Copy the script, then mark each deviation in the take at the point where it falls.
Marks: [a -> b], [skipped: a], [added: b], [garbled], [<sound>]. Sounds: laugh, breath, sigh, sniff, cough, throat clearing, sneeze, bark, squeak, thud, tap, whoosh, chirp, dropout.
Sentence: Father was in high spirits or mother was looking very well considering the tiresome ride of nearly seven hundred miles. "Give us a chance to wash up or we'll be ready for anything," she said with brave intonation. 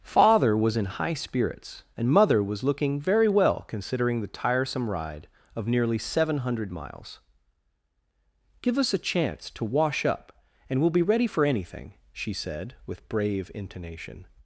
Father was in high spirits [or -> and] mother was looking very well considering the tiresome ride of nearly seven hundred miles. "Give us a chance to wash up [or -> and] we'll be ready for anything," she said with brave intonation.